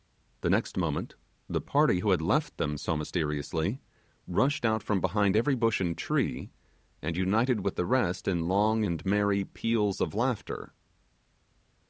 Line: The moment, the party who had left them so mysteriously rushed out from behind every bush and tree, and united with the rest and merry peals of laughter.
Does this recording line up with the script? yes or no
no